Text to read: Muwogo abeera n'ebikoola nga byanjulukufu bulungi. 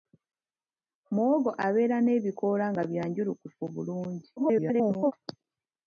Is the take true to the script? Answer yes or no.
no